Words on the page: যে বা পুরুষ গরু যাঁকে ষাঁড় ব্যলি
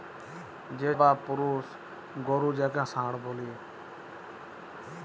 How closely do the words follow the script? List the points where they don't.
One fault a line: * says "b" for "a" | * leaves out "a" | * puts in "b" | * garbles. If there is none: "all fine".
all fine